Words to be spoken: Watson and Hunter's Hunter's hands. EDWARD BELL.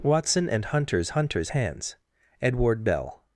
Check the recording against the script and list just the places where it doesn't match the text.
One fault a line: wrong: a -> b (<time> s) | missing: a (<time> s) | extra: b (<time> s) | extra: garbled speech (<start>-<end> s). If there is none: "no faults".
no faults